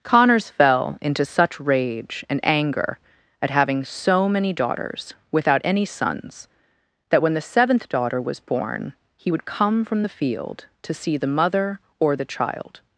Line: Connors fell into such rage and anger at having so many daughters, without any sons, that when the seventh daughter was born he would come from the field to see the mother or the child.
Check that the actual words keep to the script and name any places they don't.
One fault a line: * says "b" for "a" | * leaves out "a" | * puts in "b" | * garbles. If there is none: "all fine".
all fine